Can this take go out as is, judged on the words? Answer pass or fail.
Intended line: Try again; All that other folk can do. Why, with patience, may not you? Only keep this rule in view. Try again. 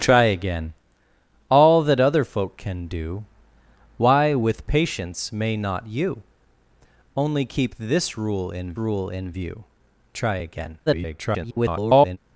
fail